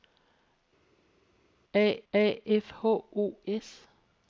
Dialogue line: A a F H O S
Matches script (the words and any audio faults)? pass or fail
pass